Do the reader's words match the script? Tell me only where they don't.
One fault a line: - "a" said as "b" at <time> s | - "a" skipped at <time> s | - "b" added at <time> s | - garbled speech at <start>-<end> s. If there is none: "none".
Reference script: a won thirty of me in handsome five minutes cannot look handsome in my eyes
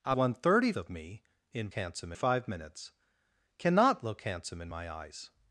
none